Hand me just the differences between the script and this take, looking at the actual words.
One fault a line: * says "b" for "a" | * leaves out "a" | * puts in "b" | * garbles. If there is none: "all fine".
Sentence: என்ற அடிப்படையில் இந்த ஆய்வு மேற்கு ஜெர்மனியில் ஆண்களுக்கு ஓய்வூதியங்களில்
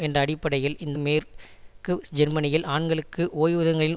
* leaves out "ஆய்வு"